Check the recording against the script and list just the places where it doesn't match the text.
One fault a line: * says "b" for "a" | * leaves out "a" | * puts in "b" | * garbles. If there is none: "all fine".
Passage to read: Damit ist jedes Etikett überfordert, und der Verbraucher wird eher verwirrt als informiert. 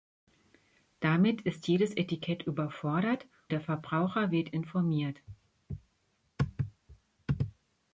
* leaves out "und"
* leaves out "eher verwirrt als"